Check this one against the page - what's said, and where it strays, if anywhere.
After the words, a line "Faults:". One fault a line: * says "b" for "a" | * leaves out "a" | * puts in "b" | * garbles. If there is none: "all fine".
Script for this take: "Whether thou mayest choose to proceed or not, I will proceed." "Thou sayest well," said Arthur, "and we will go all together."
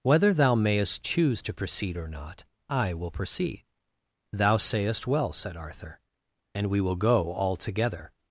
"Whether thou mayest choose to proceed or not, I will proceed." "Thou sayest well," said Arthur, "and we will go all together."
Faults:
all fine